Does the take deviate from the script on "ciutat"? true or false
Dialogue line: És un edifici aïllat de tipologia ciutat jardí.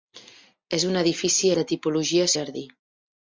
true